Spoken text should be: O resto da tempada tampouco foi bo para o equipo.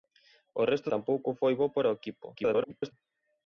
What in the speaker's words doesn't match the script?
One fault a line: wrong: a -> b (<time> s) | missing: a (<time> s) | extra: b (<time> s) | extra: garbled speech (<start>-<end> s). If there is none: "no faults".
missing: da tempada (0.9 s)
extra: garbled speech (2.3-2.9 s)